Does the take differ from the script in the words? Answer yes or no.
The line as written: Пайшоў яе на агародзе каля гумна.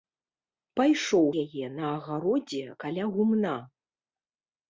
no